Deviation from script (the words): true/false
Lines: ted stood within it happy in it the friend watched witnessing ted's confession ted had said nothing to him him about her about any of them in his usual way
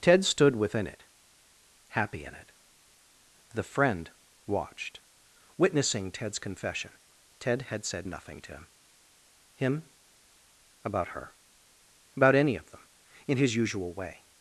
false